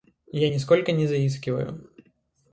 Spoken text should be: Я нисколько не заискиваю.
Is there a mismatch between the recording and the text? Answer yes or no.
no